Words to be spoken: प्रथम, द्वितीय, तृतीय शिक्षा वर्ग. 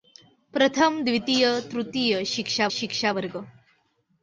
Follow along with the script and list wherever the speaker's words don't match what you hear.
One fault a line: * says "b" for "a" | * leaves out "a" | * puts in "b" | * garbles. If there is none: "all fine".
* puts in "शिक्षा"